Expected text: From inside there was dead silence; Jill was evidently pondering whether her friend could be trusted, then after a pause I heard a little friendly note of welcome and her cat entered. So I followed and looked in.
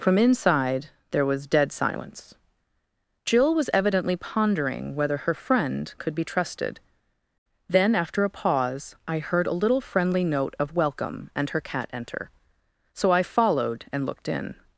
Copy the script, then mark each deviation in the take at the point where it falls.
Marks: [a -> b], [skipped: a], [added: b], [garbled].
From inside there was dead silence; Jill was evidently pondering whether her friend could be trusted, then after a pause I heard a little friendly note of welcome and her cat [entered. -> enter] So I followed and looked in.